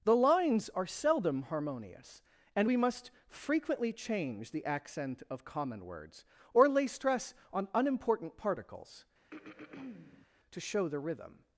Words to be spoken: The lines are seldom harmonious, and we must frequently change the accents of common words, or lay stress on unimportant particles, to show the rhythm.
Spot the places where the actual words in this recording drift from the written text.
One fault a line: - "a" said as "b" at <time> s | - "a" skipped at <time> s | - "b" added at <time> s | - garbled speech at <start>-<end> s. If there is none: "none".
- "accents" said as "accent" at 4.6 s